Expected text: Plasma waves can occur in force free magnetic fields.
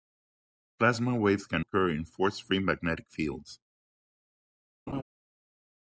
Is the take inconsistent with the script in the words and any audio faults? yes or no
yes